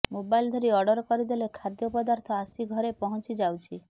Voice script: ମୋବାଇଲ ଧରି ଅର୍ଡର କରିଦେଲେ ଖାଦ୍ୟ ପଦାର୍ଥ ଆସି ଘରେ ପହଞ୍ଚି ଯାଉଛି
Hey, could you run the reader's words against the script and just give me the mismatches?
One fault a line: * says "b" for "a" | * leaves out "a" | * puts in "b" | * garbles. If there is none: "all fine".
all fine